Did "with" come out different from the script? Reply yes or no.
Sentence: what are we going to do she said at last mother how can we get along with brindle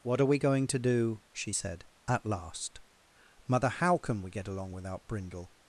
yes